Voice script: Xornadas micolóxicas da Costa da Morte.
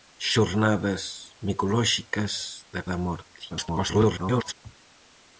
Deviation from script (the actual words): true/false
true